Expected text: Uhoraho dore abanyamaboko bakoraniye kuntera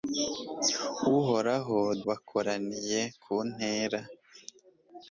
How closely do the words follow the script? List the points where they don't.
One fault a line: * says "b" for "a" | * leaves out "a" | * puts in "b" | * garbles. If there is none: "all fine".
* leaves out "dore abanyamaboko"